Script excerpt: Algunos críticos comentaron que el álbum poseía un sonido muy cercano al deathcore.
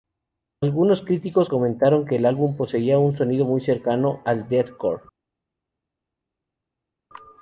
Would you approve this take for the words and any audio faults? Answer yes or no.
yes